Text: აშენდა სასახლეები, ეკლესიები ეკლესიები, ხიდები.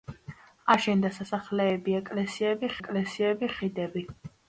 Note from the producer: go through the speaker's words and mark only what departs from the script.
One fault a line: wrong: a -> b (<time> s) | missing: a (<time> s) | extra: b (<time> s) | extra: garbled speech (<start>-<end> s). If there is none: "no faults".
no faults